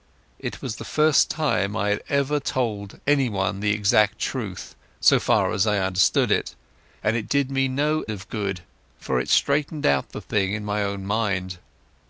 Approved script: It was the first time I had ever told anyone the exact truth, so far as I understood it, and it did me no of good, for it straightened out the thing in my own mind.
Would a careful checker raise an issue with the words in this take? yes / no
no